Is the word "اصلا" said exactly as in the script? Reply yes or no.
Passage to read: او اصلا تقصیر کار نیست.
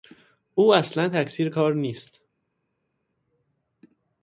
yes